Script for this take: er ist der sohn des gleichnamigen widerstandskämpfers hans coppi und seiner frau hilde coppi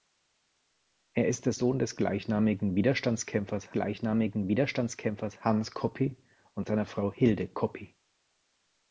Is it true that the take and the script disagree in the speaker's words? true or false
true